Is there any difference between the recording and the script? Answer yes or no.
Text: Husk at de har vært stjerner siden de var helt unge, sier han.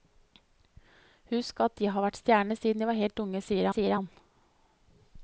yes